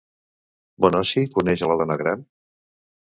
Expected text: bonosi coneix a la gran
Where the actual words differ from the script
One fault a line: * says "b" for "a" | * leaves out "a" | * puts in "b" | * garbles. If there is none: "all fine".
* puts in "dona"